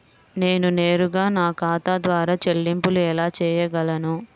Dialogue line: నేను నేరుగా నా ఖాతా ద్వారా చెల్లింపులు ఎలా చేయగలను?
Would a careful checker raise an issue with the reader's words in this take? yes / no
no